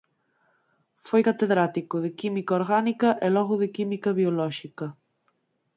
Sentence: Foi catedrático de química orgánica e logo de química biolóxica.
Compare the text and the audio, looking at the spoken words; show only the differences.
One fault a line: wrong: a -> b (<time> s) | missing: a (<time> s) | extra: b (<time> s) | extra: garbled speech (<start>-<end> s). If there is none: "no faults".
no faults